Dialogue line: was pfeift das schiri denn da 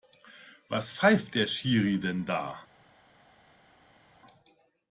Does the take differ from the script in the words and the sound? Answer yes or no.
yes